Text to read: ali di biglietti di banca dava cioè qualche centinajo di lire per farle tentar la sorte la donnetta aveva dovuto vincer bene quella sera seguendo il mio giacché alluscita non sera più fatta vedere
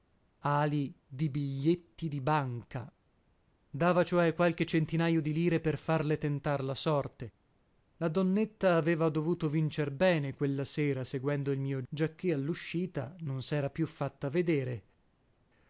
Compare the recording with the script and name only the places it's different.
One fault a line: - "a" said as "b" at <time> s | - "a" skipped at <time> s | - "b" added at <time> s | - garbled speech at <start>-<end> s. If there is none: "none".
none